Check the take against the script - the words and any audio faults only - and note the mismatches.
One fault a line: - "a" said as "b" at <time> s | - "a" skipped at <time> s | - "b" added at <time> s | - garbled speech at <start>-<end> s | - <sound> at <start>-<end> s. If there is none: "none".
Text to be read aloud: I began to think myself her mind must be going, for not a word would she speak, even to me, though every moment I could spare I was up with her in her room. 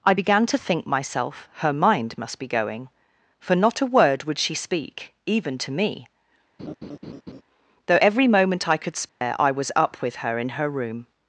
- laugh at 6.6-7.4 s
- dropout at 9.1-9.2 s